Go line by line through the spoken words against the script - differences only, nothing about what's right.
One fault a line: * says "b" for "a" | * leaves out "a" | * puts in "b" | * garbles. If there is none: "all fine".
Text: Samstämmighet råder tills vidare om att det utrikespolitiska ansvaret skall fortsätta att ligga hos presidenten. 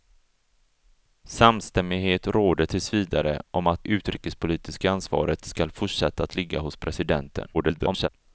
* leaves out "det"
* garbles